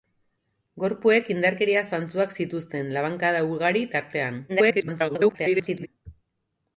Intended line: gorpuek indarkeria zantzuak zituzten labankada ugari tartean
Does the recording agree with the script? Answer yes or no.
no